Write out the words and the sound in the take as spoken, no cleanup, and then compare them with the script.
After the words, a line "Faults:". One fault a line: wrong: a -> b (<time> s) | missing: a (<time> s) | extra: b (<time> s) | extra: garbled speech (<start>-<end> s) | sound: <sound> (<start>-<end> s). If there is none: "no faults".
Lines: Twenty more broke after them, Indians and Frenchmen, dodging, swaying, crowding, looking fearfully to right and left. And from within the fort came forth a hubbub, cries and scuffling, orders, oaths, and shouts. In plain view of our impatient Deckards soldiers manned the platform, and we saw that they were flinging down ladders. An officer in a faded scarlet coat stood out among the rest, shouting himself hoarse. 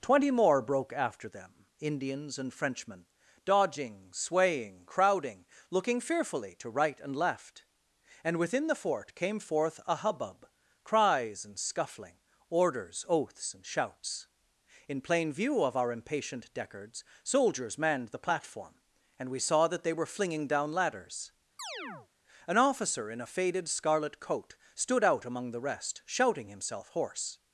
Twenty more broke after them, Indians and Frenchmen, dodging, swaying, crowding, looking fearfully to right and left. And within the fort came forth a hubbub, cries and scuffling, orders, oaths, and shouts. In plain view of our impatient Deckards soldiers manned the platform, and we saw that they were flinging down ladders. An officer in a faded scarlet coat stood out among the rest, shouting himself hoarse.
Faults:
missing: from (8.4 s)
sound: chirp (21.6-22.1 s)